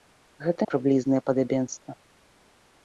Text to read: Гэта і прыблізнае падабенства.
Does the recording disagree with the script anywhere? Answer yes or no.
no